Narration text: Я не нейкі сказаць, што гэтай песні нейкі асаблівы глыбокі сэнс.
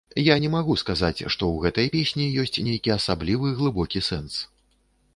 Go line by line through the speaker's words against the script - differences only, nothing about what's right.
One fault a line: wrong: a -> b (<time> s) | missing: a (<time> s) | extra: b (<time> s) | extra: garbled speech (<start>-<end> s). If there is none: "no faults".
wrong: нейкі -> магу (0.5 s)
extra: ў (1.5 s)
extra: ёсць (2.4 s)